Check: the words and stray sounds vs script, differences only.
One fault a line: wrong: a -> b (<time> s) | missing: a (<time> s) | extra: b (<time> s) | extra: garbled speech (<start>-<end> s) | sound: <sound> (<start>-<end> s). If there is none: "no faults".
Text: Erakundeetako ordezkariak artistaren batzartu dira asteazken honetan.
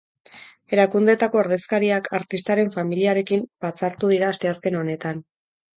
extra: familiarekin (2.8 s)